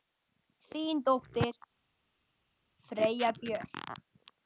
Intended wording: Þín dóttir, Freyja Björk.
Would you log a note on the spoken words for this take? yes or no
no